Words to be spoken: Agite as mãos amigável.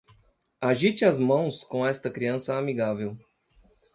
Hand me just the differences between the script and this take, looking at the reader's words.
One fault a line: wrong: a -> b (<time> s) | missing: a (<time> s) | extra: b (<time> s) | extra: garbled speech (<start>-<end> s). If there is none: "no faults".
extra: com esta criança (1.6 s)